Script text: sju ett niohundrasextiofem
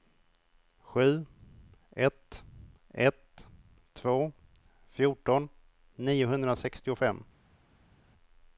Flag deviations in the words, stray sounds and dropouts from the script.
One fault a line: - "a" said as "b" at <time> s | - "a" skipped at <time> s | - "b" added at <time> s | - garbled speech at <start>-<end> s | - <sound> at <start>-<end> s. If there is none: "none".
- "ett två fjorton" added at 2.9 s